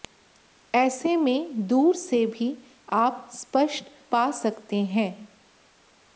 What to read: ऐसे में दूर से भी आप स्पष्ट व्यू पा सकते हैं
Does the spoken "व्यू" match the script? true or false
false